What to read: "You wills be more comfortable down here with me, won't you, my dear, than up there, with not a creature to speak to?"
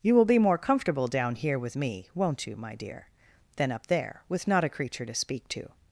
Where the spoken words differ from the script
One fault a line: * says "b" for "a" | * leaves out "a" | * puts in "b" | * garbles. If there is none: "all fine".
* says "will" for "wills"